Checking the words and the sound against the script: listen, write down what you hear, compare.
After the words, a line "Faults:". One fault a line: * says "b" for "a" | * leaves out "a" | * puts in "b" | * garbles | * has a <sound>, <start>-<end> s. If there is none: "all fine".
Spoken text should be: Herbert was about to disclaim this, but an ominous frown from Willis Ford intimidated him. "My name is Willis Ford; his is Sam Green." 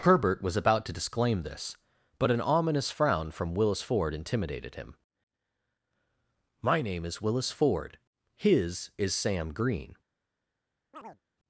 Herbert was about to disclaim this, but an ominous frown from Willis Ford intimidated him. "My name is Willis Ford; his is Sam Green."
Faults:
* has a chirp, 10.9-11.2 s